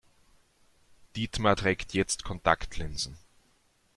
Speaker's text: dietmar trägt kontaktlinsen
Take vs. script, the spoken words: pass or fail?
fail